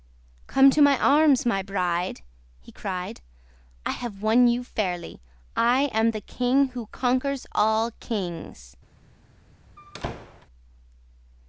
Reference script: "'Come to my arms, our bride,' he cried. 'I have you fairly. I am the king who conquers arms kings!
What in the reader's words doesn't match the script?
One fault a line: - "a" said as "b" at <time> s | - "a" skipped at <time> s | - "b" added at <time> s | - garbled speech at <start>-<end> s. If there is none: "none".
- "our" said as "my" at 1.4 s
- "won" added at 4.2 s
- "arms" said as "all" at 7.5 s